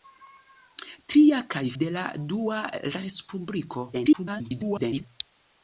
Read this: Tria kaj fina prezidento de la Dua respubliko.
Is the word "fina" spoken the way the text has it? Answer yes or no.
no